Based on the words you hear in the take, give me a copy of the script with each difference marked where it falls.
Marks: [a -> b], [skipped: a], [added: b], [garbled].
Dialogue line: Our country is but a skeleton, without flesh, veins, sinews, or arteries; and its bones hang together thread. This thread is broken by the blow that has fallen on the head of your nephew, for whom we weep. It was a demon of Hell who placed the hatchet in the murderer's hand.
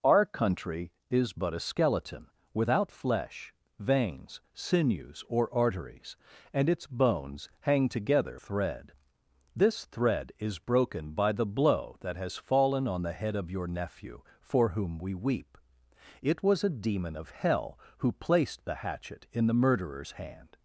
Our country is but a skeleton, without flesh, veins, sinews, or arteries; and its bones hang together thread. This thread is broken by the blow that has fallen on the head of your nephew, for whom we weep. It was a demon of Hell who placed the hatchet in the murderer's hand.